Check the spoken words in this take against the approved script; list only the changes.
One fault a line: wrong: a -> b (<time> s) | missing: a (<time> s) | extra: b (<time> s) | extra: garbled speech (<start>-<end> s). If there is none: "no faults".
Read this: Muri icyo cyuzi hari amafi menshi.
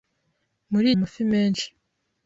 missing: icyo cyuzi hari (0.9 s)